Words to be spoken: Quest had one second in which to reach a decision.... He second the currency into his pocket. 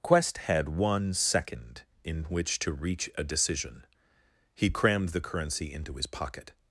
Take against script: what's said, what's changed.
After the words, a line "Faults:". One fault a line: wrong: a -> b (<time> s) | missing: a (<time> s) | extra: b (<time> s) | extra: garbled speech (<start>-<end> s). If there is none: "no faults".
Quest had one second in which to reach a decision.... He crammed the currency into his pocket.
Faults:
wrong: second -> crammed (4.7 s)